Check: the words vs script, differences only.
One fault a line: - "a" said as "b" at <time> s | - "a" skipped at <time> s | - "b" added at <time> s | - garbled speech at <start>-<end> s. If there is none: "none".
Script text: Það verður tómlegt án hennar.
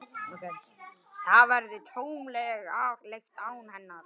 none